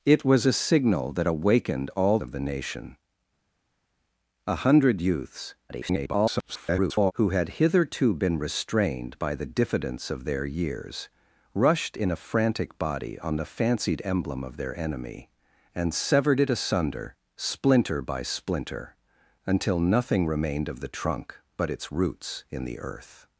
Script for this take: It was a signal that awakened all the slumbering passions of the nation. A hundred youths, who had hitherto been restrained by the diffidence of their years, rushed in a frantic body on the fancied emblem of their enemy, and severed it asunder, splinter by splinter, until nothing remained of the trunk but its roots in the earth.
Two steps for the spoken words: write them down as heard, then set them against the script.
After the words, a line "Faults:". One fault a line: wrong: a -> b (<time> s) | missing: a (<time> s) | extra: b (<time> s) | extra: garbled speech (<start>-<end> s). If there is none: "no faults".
It was a signal that awakened all of the nation. A hundred youths, [garbled] who had hitherto been restrained by the diffidence of their years, rushed in a frantic body on the fancied emblem of their enemy, and severed it asunder, splinter by splinter, until nothing remained of the trunk but its roots in the earth.
Faults:
missing: the slumbering passions (2.2 s)
extra: garbled speech (5.7-7.1 s)